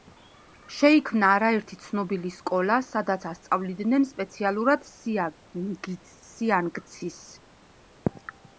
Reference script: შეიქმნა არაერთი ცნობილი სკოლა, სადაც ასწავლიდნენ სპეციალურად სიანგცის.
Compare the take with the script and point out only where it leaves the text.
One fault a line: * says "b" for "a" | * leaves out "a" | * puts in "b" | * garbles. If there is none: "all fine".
all fine